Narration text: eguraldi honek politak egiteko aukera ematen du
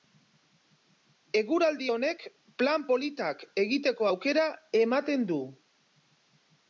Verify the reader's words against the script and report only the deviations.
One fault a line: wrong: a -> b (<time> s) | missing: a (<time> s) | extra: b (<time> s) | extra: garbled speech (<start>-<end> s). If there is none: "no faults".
extra: plan (2.6 s)